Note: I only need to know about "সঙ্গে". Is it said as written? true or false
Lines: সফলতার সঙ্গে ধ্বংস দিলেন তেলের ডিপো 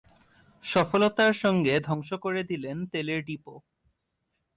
true